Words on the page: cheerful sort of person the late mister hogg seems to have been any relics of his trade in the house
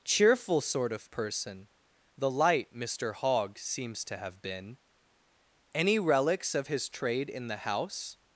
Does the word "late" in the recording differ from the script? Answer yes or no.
yes